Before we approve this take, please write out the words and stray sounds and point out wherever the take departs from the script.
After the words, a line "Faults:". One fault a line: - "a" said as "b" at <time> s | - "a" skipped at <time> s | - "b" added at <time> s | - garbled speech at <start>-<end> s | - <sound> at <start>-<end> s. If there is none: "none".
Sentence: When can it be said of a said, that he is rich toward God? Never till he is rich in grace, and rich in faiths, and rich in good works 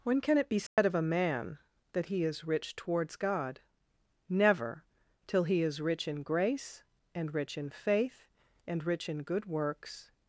When can it be said of a man, that he is rich towards God? Never till he is rich in grace, and rich in faith, and rich in good works
Faults:
- dropout at 0.7-0.8 s
- "said" said as "man" at 1.0 s
- "toward" said as "towards" at 2.8 s
- "faiths" said as "faith" at 7.7 s